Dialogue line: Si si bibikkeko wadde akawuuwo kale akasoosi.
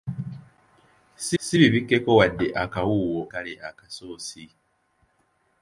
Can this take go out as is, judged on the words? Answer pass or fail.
pass